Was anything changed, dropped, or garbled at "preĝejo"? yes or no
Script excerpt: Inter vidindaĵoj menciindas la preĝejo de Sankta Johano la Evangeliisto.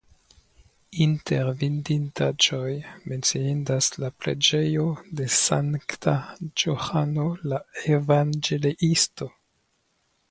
no